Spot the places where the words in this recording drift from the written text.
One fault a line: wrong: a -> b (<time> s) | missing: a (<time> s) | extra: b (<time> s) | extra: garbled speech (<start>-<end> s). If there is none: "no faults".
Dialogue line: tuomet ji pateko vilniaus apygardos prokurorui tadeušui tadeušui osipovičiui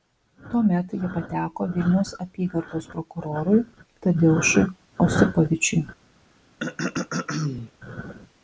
missing: tadeušui (4.7 s)